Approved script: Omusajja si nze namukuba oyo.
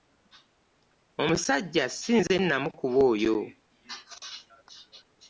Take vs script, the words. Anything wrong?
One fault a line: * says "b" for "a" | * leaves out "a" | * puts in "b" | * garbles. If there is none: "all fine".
all fine